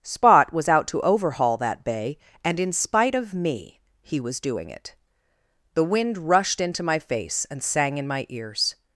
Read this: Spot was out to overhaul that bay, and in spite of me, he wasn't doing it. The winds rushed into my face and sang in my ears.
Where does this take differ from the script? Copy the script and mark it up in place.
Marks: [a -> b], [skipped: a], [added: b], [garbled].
Spot was out to overhaul that bay, and in spite of me, he [wasn't -> was] doing it. The [winds -> wind] rushed into my face and sang in my ears.